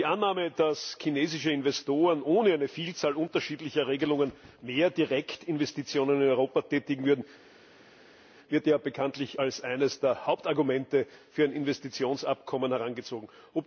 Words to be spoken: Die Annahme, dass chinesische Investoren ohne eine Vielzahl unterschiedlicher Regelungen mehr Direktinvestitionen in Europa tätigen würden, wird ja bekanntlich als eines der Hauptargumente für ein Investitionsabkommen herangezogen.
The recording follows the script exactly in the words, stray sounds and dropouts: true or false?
true